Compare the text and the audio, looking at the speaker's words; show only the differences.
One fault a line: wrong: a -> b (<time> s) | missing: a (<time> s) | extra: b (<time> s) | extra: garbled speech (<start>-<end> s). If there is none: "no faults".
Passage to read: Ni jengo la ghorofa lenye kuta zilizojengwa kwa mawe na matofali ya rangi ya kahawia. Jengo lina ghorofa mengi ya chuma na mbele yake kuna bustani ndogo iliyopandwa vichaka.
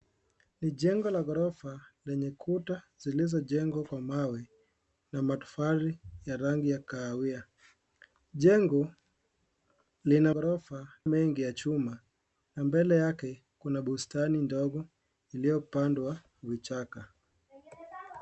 no faults